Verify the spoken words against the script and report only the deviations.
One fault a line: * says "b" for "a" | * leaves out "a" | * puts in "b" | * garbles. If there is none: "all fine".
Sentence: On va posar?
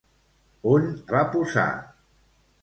all fine